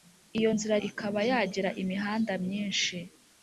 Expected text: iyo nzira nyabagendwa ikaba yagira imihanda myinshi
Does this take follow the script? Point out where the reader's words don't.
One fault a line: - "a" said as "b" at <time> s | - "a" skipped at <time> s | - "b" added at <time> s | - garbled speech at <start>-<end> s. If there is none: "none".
- "nyabagendwa" skipped at 0.7 s